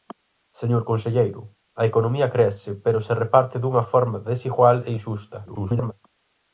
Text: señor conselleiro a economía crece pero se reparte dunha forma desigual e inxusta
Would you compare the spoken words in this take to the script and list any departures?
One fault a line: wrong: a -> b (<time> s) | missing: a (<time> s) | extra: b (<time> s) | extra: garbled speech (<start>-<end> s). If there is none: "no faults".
extra: garbled speech (5.5-5.9 s)